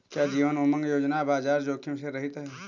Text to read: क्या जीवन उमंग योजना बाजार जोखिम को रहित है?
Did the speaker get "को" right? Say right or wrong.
wrong